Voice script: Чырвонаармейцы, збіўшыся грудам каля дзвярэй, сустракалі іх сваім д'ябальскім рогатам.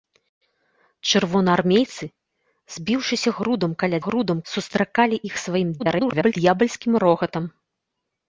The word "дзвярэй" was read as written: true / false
false